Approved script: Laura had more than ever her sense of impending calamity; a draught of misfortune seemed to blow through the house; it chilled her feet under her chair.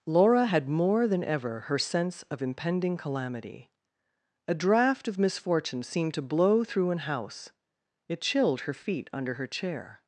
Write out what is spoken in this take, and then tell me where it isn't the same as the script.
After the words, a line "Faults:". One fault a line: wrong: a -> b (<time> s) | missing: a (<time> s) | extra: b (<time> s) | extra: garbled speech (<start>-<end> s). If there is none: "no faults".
Laura had more than ever her sense of impending calamity; a draught of misfortune seemed to blow through an house; it chilled her feet under her chair.
Faults:
wrong: the -> an (6.9 s)